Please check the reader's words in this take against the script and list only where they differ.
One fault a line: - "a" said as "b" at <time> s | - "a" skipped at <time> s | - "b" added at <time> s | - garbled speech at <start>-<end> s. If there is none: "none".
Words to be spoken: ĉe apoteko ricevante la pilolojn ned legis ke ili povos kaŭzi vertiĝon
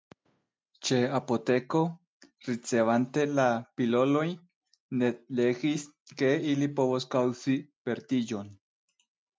none